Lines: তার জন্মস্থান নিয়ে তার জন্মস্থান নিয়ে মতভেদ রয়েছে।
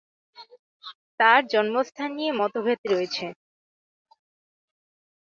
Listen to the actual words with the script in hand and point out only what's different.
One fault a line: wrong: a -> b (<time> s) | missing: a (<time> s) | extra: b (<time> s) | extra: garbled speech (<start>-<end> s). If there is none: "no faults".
missing: তার জন্মস্থান নিয়ে (2.3 s)